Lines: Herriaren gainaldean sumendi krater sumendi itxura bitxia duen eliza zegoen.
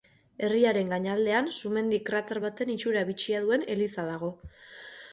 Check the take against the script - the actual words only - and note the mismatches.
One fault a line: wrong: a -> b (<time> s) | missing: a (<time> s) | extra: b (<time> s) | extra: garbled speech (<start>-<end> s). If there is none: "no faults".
wrong: sumendi -> baten (2.5 s)
wrong: zegoen -> dago (4.2 s)